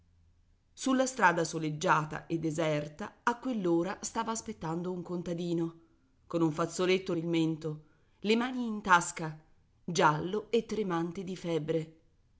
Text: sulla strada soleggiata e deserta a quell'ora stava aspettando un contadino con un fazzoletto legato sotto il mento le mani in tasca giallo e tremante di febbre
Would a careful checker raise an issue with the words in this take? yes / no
yes